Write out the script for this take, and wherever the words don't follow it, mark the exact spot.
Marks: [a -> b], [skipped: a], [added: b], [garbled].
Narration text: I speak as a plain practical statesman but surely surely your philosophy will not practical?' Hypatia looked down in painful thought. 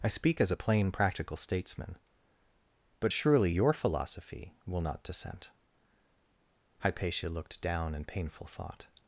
I speak as a plain practical statesman but surely [skipped: surely] your philosophy will not [practical?' -> dissent] Hypatia looked down in painful thought.